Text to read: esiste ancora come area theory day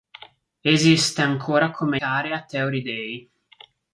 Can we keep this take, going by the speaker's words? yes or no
yes